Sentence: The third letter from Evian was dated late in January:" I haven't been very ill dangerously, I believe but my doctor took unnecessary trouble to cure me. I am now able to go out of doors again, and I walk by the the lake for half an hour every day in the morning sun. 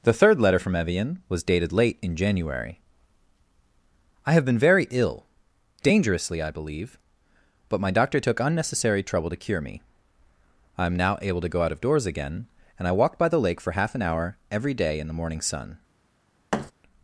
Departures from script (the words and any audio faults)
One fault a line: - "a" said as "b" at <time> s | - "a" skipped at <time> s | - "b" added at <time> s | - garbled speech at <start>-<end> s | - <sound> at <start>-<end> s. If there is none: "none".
- "haven't" said as "have" at 4.3 s
- "the" skipped at 13.4 s
- thud at 16.5-16.7 s